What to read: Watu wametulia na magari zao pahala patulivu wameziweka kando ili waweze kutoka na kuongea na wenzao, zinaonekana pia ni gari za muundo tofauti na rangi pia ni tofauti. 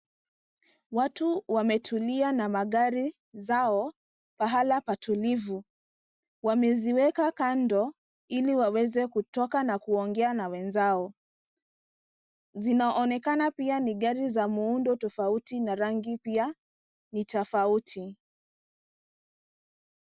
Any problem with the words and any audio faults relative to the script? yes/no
no